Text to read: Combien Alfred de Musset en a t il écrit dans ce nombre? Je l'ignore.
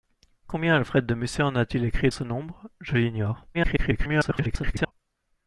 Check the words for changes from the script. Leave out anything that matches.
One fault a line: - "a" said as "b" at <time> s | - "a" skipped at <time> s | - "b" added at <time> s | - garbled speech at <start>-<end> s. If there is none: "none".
- "dans" skipped at 2.1 s
- garbled speech at 3.5-4.9 s